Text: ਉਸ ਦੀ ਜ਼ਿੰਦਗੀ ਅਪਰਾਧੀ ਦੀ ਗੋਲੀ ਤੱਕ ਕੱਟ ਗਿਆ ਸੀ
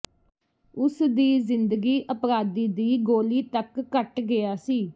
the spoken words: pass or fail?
pass